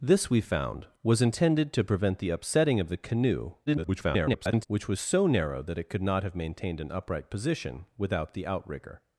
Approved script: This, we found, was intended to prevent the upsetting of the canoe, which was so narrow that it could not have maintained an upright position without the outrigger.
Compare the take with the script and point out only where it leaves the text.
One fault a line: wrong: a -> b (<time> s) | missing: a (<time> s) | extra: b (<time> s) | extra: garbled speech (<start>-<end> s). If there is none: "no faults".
extra: garbled speech (3.7-4.7 s)